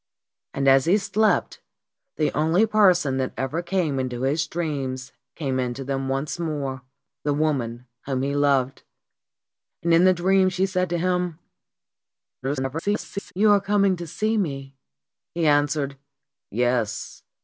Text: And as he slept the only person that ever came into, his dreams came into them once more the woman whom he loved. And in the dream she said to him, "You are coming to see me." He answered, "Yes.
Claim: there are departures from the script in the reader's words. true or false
true